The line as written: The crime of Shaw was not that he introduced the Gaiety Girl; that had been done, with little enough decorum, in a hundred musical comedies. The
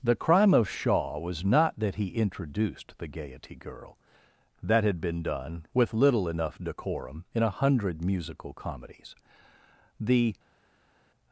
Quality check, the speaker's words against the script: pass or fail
pass